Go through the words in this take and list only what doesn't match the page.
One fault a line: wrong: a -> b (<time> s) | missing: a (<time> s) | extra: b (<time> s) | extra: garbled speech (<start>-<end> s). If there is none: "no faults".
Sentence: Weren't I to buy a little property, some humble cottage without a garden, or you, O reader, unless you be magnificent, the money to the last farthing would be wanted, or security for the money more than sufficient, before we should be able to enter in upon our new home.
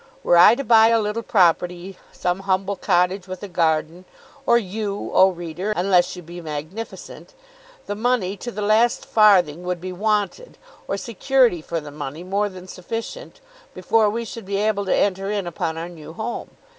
wrong: Weren't -> Were (0.2 s)
wrong: without -> with (3.3 s)